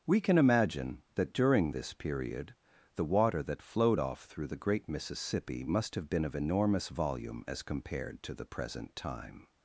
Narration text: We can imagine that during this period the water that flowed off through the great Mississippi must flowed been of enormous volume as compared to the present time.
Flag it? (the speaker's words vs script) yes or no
yes